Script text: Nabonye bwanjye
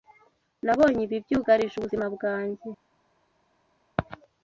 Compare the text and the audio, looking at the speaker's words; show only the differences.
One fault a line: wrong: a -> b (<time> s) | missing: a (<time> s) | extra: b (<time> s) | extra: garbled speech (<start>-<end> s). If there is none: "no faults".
extra: ibi byugarije ubuzima (1.1 s)